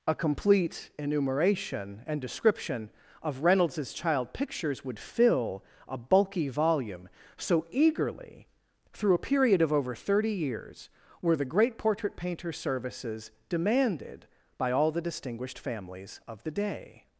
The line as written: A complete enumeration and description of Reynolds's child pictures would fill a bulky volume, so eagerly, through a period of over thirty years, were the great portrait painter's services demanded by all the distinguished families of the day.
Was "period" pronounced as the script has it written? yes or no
yes